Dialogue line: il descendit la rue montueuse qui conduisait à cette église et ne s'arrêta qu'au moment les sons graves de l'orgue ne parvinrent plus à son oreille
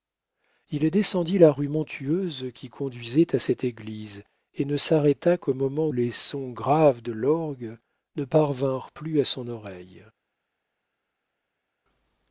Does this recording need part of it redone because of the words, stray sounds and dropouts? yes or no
no